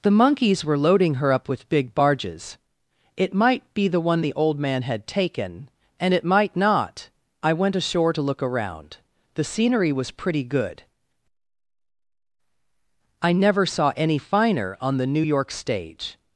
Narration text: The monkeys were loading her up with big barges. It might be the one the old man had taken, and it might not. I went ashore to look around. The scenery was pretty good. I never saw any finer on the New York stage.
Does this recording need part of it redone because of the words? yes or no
no